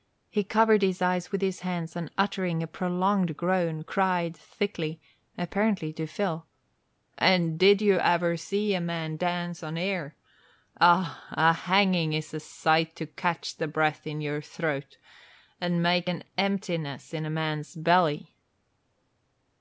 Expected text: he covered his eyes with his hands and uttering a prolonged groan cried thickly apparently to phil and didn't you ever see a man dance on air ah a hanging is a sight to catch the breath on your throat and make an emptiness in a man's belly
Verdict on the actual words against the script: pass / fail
fail